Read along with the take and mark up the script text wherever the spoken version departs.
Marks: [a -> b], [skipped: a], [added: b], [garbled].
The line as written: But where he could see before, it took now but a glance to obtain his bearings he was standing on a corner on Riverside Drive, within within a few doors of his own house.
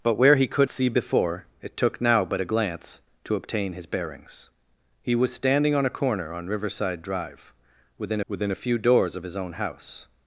But where he could see before, it took now but a glance to obtain his bearings he was standing on a corner on Riverside Drive, within within a few doors of his own house.